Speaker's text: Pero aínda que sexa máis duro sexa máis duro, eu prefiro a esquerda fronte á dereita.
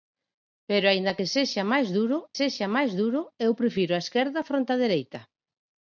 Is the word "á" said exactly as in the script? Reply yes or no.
yes